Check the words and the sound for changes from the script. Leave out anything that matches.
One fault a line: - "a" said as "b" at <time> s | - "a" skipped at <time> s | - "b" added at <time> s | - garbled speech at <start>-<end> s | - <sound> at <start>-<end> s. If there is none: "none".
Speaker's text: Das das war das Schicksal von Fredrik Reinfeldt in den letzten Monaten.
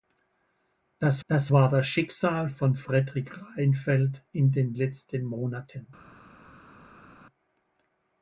none